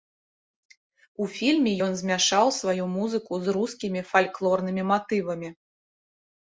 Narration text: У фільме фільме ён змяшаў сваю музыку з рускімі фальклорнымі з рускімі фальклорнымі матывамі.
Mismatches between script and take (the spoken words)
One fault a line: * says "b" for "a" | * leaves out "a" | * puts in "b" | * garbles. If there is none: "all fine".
* leaves out "фільме"
* leaves out "з рускімі фальклорнымі"